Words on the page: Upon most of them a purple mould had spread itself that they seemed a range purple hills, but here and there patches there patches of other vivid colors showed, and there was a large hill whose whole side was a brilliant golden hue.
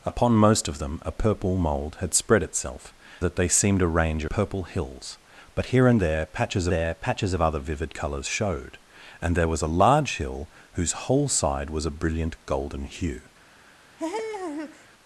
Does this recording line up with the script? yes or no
yes